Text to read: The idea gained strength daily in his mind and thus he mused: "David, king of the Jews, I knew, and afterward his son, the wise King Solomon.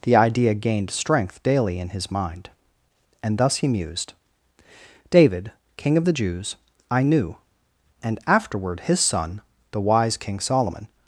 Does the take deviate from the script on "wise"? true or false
false